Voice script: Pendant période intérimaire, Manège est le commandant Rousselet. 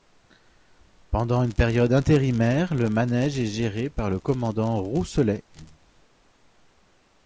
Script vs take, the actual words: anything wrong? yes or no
yes